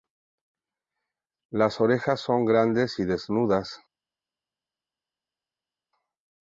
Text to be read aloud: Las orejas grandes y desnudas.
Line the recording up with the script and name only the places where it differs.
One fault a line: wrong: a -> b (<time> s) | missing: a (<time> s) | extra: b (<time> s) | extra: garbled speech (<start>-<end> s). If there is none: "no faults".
extra: son (2.2 s)